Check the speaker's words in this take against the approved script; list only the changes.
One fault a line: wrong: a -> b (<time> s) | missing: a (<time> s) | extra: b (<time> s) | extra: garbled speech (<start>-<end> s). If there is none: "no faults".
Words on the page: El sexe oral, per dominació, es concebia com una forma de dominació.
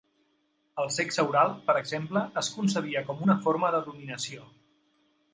wrong: dominació -> exemple (1.8 s)